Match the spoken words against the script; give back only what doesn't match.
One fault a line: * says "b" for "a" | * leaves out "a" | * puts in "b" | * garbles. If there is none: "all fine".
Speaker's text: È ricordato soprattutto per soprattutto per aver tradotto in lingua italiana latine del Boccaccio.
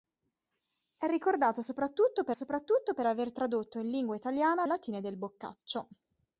all fine